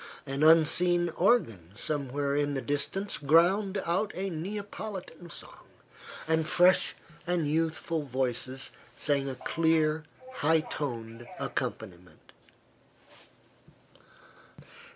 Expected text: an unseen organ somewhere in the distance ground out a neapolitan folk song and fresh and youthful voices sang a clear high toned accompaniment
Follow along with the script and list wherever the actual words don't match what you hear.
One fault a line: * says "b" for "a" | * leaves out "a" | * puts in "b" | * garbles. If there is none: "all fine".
* leaves out "folk"